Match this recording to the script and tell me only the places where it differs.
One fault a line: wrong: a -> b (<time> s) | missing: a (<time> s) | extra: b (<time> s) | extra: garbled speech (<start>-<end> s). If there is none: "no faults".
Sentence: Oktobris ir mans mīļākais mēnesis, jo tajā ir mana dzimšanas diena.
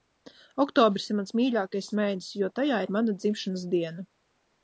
no faults